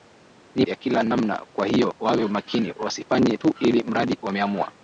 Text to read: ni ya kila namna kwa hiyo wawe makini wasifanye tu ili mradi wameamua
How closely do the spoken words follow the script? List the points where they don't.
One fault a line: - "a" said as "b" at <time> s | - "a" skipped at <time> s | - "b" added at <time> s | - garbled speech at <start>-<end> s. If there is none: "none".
none